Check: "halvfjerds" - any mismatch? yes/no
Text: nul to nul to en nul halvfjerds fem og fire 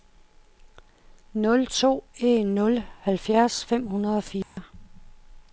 no